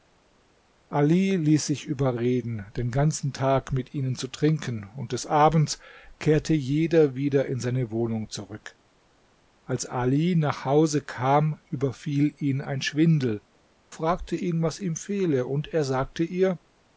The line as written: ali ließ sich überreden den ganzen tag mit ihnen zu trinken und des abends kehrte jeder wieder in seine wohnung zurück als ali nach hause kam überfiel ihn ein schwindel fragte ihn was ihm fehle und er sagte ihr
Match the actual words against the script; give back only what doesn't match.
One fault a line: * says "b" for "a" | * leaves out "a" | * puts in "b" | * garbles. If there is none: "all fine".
all fine